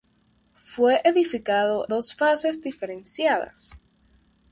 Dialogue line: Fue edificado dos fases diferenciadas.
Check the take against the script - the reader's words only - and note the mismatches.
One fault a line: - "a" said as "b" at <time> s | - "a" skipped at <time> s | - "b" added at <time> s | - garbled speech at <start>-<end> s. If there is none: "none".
none